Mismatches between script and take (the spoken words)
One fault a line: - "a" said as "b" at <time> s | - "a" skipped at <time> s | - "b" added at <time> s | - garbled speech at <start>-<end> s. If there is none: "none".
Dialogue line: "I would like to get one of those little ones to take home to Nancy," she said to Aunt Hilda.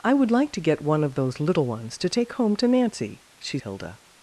- "said to Aunt" skipped at 3.6 s